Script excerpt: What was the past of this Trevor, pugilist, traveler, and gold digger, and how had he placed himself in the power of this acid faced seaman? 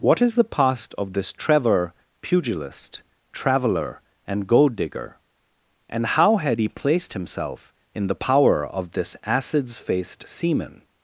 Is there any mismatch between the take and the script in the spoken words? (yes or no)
yes